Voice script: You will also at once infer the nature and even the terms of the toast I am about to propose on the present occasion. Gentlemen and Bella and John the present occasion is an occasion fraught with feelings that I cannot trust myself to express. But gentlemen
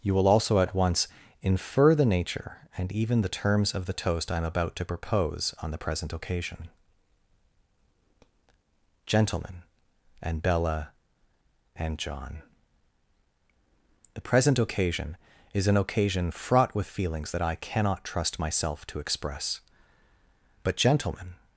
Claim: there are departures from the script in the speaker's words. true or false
false